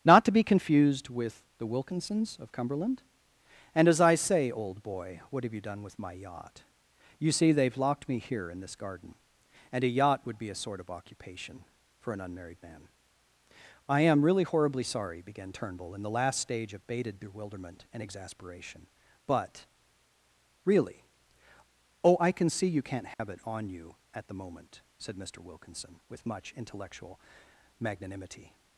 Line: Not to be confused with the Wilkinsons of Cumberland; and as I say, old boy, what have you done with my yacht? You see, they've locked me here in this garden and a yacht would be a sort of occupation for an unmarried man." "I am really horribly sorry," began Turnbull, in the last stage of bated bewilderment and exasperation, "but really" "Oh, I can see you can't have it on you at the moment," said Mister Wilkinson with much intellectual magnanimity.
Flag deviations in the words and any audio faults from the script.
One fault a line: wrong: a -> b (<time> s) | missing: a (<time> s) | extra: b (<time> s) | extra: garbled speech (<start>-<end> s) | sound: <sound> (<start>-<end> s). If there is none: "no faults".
sound: dropout (23.1-23.2 s)